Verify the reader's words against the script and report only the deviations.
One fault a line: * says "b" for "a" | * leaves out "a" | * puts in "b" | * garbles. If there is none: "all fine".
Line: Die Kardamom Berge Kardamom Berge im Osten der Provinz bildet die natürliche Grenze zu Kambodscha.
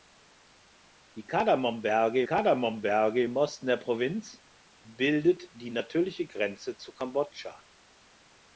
all fine